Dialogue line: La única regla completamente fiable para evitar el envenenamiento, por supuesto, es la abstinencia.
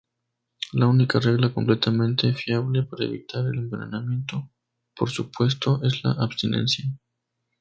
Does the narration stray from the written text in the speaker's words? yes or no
no